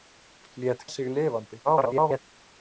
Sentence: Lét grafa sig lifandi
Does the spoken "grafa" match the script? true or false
false